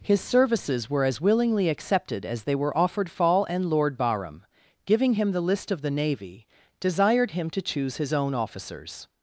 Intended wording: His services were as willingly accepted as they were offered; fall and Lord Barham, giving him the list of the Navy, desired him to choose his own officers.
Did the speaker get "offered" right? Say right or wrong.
right